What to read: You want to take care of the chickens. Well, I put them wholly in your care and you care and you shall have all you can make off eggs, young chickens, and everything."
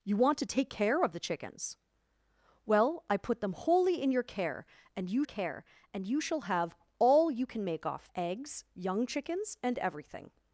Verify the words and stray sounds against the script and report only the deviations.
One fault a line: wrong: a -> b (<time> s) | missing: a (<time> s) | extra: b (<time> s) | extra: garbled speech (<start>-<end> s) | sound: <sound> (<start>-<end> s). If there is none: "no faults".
no faults